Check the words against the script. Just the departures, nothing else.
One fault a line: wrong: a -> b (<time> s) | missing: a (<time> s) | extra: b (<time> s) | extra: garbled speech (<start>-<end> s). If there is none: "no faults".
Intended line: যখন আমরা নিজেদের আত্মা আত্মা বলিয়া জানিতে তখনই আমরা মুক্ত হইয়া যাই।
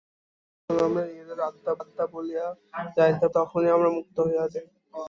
no faults